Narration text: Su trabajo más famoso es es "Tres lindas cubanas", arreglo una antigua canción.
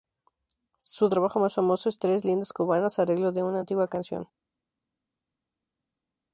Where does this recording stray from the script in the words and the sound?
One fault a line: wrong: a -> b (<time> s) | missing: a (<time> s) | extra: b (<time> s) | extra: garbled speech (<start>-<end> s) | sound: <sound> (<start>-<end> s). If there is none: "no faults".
missing: es (2.0 s)
extra: de (3.3 s)